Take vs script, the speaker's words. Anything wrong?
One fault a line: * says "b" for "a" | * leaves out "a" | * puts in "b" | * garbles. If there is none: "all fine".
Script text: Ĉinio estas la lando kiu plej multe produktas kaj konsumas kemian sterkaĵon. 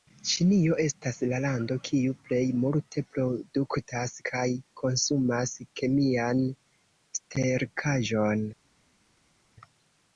all fine